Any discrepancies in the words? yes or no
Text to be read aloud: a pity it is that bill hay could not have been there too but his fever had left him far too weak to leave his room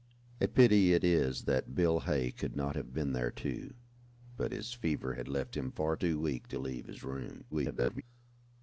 yes